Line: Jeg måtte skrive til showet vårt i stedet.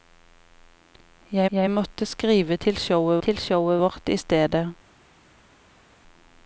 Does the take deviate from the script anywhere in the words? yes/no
yes